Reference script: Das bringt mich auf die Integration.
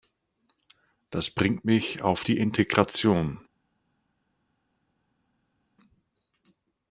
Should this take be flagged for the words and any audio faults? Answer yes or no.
no